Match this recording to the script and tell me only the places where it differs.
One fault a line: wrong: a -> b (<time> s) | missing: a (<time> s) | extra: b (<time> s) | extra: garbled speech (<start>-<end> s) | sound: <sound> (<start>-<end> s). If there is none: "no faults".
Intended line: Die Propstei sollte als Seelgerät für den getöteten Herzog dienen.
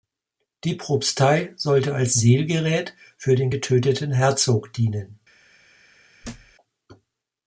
sound: thud (6.2-6.5 s)